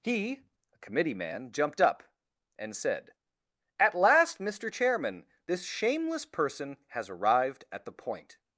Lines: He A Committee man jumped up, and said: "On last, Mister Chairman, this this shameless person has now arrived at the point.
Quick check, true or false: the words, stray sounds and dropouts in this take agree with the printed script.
false